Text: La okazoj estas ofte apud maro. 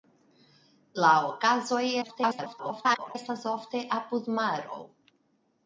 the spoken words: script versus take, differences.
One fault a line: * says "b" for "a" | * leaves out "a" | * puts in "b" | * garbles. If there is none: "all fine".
* garbles